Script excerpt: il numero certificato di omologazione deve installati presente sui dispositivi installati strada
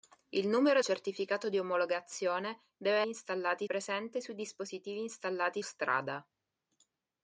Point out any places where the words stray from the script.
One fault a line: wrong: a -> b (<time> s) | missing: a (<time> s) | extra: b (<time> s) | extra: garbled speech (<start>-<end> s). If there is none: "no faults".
no faults